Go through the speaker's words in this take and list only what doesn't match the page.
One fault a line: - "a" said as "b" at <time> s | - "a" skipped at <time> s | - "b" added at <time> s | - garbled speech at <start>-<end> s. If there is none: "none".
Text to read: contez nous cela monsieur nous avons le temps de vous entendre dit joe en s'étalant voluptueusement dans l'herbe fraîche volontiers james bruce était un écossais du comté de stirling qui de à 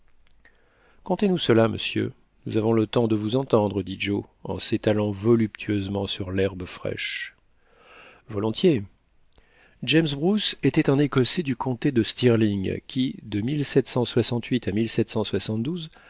- "dans" said as "sur" at 6.1 s